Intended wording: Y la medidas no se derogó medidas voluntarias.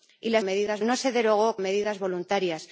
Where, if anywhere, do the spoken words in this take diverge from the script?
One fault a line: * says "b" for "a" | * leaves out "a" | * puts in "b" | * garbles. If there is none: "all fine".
all fine